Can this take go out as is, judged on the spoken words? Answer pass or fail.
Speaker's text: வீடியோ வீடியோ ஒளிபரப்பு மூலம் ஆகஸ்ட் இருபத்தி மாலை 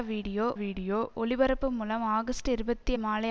pass